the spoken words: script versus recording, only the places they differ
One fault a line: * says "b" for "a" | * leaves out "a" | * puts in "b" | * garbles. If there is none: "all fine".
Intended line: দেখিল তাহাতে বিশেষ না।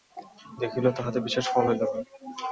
* puts in "ফল হইল"